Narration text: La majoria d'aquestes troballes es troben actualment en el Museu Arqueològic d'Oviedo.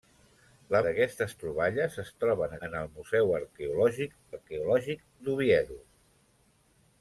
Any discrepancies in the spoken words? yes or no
yes